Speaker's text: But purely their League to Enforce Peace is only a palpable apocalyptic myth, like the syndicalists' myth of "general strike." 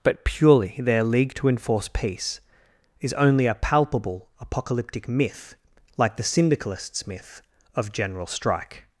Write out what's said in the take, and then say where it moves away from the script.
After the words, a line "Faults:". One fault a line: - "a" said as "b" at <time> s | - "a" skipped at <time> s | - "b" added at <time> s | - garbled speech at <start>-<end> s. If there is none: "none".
But purely their League to Enforce Peace is only a palpable apocalyptic myth, like the syndicalists' myth of "general strike."
Faults:
none